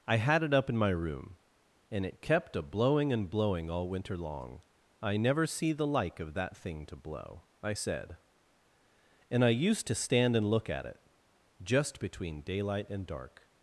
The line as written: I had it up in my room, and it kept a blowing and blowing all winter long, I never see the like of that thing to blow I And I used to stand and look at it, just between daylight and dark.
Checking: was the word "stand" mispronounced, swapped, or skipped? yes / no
no